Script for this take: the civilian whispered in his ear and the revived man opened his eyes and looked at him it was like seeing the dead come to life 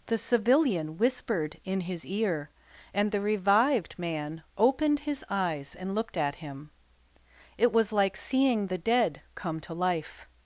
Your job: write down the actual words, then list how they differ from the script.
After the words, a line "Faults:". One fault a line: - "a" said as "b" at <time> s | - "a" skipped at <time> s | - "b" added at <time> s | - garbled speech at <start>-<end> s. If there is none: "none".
the civilian whispered in his ear and the revived man opened his eyes and looked at him it was like seeing the dead come to life
Faults:
none